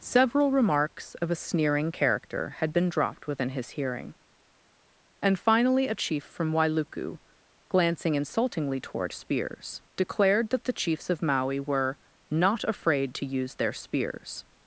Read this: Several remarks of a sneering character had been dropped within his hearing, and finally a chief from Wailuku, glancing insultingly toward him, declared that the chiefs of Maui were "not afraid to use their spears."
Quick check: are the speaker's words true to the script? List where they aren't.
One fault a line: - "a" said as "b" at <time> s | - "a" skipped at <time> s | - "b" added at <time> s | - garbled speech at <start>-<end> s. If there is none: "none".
- "him" said as "spears" at 9.1 s